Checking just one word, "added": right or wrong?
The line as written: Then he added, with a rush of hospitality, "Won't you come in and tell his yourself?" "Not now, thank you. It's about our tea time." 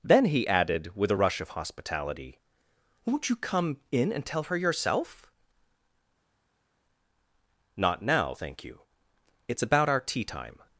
right